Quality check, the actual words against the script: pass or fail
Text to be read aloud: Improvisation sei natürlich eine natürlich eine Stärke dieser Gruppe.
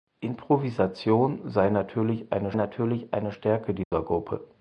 pass